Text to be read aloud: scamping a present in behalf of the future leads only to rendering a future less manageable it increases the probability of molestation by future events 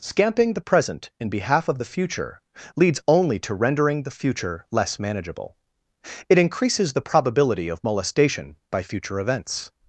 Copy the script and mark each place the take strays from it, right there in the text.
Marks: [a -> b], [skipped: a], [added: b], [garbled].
scamping [a -> the] present in behalf of the future leads only to rendering [a -> the] future less manageable it increases the probability of molestation by future events